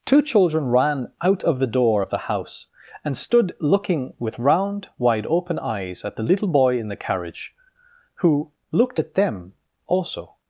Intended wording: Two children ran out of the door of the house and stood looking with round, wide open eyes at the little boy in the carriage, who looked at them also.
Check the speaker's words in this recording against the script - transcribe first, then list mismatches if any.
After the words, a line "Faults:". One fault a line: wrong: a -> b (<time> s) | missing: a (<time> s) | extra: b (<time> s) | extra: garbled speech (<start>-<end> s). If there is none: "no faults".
Two children ran out of the door of the house and stood looking with round, wide open eyes at the little boy in the carriage, who looked at them also.
Faults:
no faults